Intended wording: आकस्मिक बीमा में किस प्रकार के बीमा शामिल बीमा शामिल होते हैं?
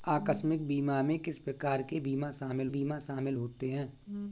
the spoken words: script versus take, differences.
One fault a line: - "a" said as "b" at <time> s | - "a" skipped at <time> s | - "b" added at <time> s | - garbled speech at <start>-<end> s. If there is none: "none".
none